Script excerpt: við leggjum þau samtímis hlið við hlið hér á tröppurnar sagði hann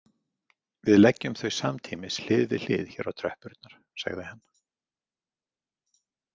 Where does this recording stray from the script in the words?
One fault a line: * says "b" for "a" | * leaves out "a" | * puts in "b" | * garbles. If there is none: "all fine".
all fine